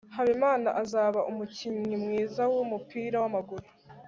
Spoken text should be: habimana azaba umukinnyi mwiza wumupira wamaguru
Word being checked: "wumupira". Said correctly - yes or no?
yes